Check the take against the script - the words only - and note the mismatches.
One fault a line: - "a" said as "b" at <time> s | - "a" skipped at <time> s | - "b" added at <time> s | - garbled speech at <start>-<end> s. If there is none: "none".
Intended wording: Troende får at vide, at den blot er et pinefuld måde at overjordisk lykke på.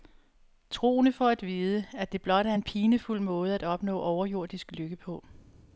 - "den" said as "det" at 2.1 s
- "et" said as "en" at 2.5 s
- "opnå" added at 3.6 s